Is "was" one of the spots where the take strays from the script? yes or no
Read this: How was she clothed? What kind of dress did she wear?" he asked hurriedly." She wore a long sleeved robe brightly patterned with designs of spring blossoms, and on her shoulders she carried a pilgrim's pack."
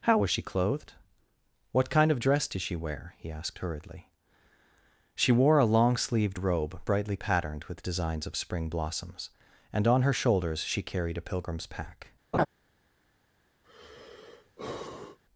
no